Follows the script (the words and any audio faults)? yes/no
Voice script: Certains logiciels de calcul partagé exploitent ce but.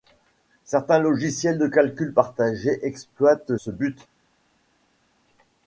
yes